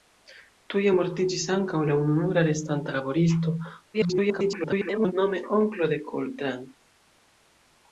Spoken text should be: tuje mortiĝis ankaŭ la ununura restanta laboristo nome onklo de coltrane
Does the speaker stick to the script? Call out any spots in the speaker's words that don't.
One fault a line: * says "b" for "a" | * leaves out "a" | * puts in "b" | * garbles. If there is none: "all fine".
* garbles